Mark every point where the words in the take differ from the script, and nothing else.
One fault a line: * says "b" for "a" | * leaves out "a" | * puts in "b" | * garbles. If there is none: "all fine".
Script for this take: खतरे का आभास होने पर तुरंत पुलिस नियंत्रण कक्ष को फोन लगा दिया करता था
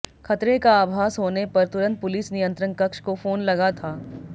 * leaves out "दिया करता"